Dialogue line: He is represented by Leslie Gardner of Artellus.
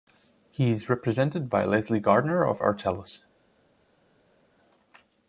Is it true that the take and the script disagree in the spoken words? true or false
false